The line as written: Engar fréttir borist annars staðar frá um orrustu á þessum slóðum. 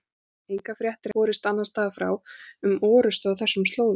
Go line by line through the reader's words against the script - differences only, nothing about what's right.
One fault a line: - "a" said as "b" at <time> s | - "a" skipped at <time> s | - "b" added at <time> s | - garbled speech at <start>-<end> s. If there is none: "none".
none